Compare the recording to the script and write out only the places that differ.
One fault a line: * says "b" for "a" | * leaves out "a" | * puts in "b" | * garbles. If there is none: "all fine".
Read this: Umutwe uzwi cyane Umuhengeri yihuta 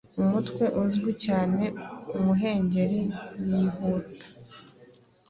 all fine